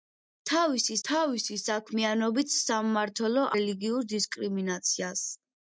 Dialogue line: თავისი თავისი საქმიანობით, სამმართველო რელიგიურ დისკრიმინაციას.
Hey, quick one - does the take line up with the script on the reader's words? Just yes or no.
yes